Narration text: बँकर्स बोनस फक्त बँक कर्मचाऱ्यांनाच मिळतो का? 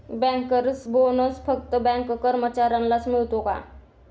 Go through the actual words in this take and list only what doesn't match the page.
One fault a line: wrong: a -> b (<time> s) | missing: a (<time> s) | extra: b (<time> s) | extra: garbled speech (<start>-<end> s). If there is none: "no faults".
no faults